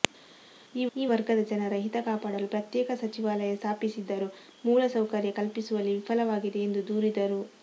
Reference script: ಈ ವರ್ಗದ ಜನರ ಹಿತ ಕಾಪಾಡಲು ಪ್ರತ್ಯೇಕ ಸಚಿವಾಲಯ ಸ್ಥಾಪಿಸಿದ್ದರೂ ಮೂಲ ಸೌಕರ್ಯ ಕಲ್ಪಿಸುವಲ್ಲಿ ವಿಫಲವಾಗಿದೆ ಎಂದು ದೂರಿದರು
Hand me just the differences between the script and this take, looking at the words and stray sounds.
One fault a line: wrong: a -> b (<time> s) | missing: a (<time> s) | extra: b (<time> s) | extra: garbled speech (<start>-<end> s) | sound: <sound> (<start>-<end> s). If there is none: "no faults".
extra: ಈ (0.9 s)